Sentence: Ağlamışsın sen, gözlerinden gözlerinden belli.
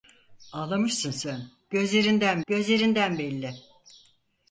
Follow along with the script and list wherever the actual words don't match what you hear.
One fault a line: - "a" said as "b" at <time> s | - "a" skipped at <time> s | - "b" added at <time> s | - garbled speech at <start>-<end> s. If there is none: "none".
none